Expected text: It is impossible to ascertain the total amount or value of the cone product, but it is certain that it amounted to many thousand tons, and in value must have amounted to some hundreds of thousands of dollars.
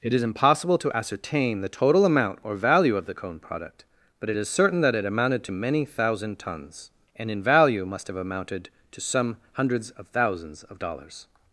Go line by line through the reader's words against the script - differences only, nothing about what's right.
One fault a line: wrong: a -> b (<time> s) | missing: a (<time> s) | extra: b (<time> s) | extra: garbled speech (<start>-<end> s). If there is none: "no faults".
no faults